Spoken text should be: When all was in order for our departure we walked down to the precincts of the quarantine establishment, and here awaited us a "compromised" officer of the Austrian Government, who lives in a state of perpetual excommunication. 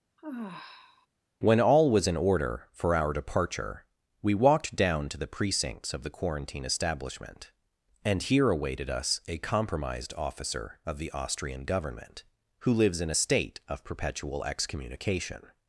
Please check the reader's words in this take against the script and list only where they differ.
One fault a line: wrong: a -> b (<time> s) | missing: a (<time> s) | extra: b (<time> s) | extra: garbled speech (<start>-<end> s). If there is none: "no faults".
no faults